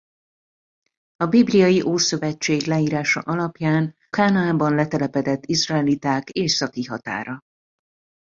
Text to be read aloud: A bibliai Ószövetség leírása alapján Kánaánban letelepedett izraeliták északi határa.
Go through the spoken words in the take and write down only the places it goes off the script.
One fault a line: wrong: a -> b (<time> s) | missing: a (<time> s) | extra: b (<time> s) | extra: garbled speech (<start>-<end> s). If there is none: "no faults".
no faults